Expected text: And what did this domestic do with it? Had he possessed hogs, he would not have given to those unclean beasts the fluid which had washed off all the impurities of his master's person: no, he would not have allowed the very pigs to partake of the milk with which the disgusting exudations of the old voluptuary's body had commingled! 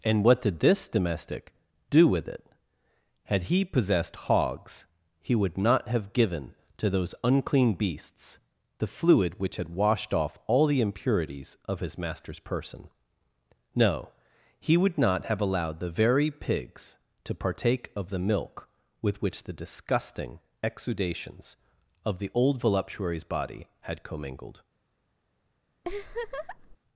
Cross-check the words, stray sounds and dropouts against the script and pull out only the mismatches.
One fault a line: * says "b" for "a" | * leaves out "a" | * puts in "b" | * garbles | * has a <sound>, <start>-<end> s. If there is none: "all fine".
* has a laugh, 25.8-26.8 s